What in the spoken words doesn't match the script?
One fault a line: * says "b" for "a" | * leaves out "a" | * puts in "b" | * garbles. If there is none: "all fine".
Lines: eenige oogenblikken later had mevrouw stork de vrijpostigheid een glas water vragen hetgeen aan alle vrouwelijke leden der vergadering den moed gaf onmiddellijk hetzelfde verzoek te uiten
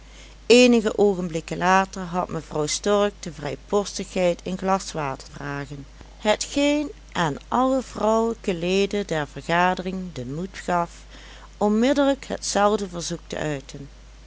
all fine